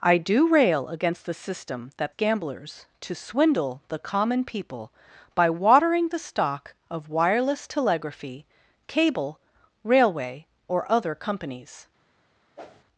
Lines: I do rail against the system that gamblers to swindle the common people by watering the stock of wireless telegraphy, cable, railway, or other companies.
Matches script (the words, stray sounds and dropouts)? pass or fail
fail